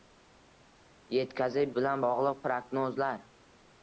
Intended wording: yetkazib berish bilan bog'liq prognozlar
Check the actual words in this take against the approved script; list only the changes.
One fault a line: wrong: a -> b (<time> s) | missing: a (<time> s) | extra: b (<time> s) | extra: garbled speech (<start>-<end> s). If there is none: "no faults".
missing: berish (1.7 s)